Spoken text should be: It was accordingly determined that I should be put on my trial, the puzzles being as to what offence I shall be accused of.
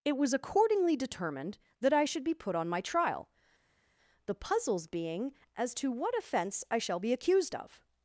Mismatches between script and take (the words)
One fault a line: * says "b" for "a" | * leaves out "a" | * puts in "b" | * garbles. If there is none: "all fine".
all fine